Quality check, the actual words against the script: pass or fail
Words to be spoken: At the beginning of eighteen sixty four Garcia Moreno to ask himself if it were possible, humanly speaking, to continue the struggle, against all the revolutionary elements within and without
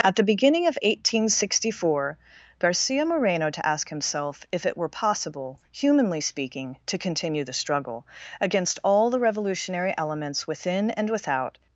pass